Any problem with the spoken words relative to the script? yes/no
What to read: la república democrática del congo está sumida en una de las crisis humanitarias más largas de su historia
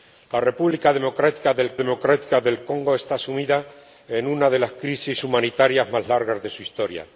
yes